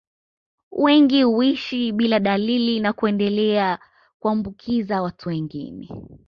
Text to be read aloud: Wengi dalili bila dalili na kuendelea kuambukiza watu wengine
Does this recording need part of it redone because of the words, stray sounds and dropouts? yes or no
yes